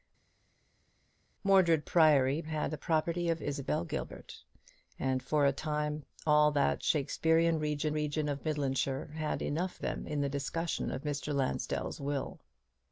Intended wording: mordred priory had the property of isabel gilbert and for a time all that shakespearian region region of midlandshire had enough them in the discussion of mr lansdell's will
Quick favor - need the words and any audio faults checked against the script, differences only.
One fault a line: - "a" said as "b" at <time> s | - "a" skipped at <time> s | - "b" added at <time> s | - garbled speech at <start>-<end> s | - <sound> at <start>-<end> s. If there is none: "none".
none